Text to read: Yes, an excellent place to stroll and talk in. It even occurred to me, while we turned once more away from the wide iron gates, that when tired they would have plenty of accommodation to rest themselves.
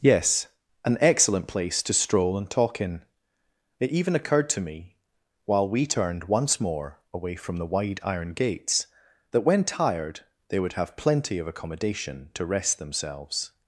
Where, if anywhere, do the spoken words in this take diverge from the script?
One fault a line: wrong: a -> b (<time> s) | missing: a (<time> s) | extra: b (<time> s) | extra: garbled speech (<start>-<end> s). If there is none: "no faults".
no faults